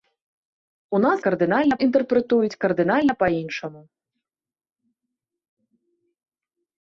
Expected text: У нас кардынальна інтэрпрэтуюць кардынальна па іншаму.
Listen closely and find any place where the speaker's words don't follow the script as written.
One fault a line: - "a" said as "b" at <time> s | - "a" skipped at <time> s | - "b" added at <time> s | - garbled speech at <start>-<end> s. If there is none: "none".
none